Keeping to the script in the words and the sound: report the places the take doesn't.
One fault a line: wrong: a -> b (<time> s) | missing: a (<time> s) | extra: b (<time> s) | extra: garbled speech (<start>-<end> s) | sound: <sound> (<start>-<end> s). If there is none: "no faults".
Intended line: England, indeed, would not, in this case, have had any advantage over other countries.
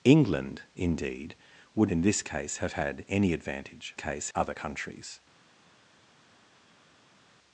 missing: not (1.9 s)
wrong: over -> case (3.9 s)